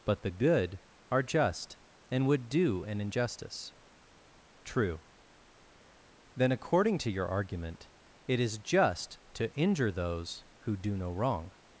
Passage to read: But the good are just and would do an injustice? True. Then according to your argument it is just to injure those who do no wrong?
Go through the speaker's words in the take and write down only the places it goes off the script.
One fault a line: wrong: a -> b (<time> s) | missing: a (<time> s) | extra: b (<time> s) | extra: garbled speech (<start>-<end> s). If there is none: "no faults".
no faults